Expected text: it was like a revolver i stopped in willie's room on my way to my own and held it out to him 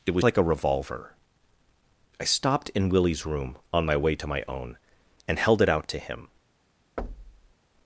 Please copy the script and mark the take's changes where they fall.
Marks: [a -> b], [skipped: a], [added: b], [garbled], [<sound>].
it was like a revolver i stopped in willie's room on my way to my own and held it out to him [thud]